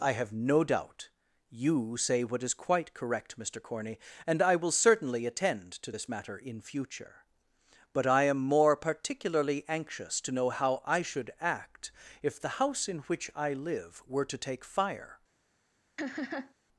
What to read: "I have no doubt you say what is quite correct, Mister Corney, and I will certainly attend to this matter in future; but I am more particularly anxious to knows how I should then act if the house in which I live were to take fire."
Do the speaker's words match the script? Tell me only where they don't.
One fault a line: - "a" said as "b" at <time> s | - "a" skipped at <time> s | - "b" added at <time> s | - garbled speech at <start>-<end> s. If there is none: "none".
- "knows" said as "know" at 10.3 s
- "then" skipped at 11.3 s